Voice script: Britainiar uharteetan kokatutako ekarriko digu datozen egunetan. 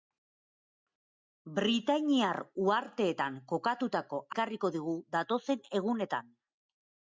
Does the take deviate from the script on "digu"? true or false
false